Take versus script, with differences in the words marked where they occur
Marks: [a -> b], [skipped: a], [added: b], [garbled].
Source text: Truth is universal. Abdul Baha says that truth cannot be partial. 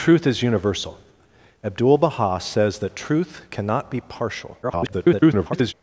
Truth is universal. Abdul Baha says that truth cannot be partial. [garbled]